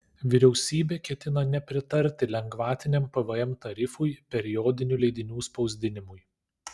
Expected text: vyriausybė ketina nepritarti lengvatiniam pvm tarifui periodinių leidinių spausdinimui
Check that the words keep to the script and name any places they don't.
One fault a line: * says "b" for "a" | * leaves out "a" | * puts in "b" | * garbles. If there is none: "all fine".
all fine